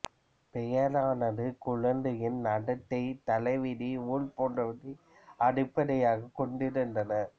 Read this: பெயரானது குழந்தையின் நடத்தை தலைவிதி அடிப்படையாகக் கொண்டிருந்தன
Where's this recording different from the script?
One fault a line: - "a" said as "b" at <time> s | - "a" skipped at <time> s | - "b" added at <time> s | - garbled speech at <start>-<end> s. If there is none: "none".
- "ஊழ் போன்றவற்றை" added at 4.1 s